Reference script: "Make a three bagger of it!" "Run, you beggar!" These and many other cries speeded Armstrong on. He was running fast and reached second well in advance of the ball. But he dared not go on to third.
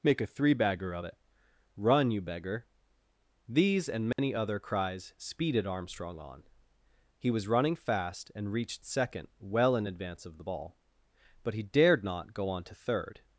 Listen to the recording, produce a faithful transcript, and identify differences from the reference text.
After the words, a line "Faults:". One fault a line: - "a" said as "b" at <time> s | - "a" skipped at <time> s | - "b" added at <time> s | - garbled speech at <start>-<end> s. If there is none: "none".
"Make a three bagger of it!" "Run, you beggar!" These and many other cries speeded Armstrong on. He was running fast and reached second well in advance of the ball. But he dared not go on to third.
Faults:
none